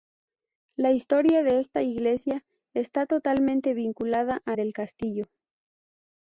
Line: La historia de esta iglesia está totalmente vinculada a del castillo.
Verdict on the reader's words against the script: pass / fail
pass